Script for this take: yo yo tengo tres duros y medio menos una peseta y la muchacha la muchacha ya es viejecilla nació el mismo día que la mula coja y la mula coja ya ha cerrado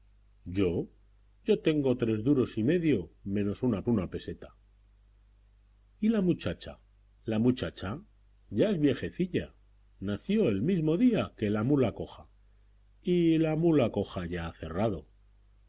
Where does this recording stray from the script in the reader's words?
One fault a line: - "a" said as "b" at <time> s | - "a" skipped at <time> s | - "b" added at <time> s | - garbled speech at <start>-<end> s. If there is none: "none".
- "una" added at 3.9 s